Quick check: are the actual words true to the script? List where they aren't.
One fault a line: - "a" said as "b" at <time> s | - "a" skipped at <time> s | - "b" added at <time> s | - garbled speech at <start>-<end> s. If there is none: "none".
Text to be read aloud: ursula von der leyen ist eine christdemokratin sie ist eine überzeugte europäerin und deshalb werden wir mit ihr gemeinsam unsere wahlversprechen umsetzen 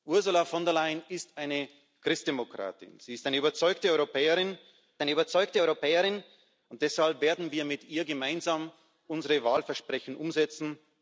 - "eine überzeugte europäerin" added at 5.0 s